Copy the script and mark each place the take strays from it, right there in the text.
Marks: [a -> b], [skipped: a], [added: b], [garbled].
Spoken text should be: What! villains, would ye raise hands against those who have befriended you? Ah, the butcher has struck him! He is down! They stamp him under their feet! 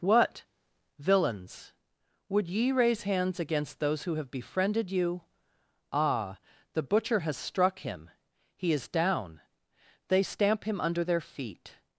What! villains, would ye raise hands against those who have befriended you? Ah, the butcher has struck him! He is down! They stamp him under their feet!